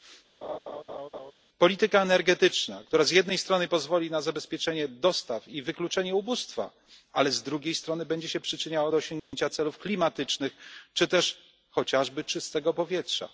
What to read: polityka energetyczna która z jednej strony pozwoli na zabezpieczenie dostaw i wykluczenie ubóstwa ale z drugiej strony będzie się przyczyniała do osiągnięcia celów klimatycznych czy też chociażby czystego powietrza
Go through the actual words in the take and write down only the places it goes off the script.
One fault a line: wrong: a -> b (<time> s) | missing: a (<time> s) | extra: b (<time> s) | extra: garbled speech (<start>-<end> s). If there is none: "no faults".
no faults